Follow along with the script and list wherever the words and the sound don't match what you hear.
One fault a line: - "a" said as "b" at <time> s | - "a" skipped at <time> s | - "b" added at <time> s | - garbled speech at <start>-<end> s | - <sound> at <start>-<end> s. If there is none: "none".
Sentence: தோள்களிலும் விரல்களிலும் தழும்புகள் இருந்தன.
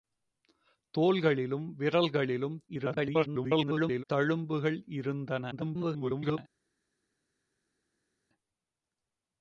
- garbled speech at 2.7-4.0 s
- garbled speech at 5.5-6.4 s